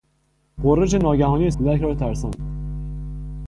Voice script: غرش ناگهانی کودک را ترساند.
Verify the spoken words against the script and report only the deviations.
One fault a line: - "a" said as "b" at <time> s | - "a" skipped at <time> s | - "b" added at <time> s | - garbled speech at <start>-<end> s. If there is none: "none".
none